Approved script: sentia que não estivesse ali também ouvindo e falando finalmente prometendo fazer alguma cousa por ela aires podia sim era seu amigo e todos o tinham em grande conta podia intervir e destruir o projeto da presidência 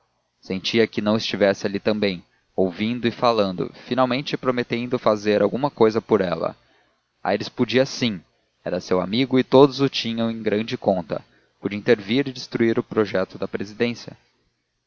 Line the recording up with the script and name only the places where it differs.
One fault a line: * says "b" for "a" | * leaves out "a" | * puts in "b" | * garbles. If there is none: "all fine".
all fine